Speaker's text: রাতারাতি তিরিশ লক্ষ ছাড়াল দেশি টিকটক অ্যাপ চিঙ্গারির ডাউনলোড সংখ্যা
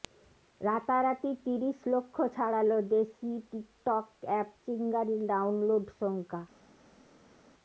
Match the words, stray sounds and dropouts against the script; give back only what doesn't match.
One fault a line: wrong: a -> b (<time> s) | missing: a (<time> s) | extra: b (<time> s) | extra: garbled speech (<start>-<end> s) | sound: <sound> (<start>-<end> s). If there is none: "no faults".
no faults